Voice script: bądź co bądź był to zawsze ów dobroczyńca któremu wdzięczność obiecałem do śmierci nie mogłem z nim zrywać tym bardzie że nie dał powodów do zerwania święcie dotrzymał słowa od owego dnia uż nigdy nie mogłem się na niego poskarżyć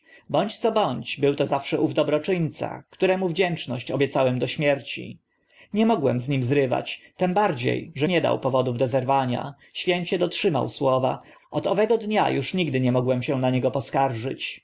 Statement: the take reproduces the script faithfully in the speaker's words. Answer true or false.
true